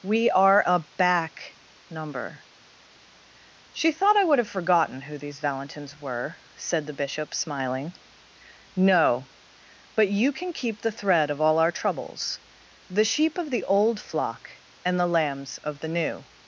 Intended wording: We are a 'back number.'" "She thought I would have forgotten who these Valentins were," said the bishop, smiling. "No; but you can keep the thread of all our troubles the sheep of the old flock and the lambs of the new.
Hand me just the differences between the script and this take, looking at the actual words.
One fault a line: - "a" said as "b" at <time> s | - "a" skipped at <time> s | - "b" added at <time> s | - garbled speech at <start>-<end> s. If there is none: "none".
none